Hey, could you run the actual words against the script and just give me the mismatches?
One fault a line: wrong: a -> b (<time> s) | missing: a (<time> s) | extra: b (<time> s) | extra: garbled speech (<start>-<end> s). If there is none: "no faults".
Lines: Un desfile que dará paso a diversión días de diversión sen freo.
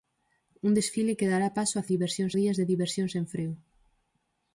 no faults